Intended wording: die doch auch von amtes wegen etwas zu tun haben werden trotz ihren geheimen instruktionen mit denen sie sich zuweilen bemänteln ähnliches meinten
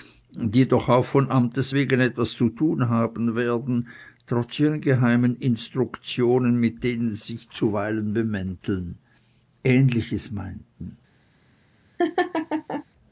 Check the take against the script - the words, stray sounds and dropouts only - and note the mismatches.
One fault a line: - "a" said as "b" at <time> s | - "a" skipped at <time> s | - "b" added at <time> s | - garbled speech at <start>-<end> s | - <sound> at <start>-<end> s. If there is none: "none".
- laugh at 12.0-12.8 s